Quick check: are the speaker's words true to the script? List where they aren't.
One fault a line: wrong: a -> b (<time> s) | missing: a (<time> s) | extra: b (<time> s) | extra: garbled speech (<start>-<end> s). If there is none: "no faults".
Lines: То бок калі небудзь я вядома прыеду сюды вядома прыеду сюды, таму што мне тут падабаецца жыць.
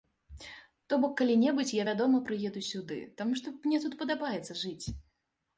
missing: вядома прыеду сюды (3.0 s)